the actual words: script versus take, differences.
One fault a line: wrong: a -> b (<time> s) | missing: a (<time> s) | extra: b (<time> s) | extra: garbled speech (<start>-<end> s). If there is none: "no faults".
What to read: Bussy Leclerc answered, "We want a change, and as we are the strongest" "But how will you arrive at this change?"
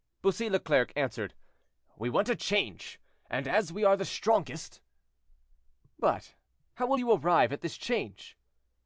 no faults